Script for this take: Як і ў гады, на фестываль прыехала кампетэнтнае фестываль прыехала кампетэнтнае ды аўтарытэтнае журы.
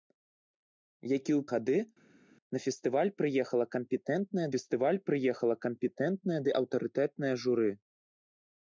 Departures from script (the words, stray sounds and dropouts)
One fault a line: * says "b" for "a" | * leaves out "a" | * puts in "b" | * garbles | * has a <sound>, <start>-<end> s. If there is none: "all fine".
all fine